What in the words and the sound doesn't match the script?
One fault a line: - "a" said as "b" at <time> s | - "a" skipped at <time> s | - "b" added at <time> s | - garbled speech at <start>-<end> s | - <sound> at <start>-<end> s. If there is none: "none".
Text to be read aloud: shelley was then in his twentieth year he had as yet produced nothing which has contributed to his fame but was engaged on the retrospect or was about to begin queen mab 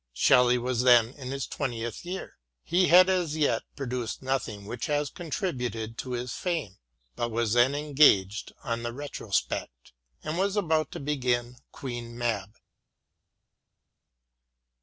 - "then" added at 7.5 s
- "or" said as "and" at 10.2 s